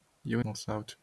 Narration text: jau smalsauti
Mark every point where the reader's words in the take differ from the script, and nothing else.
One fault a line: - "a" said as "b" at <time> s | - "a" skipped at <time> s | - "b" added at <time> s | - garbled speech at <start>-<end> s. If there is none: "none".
none